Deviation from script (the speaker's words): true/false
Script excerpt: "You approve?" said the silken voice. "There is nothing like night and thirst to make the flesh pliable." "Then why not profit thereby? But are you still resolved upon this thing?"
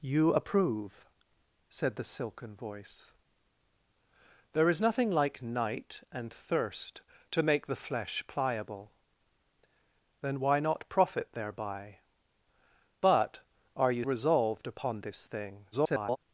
true